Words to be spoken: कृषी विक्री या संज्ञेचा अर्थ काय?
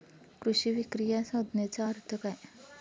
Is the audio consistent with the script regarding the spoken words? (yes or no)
yes